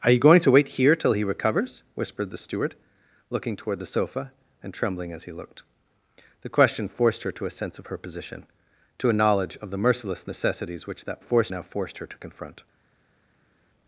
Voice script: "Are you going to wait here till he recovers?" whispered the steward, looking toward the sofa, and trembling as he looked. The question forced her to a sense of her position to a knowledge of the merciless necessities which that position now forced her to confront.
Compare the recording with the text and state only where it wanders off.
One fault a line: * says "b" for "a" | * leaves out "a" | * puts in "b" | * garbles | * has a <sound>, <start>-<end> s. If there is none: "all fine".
* says "forced" for "position"